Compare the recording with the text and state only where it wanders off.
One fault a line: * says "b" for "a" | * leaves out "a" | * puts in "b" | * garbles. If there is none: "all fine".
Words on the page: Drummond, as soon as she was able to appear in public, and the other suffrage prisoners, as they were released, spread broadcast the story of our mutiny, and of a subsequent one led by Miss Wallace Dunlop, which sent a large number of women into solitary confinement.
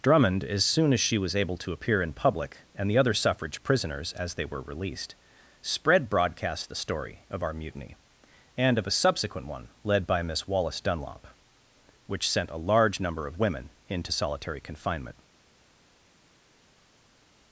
all fine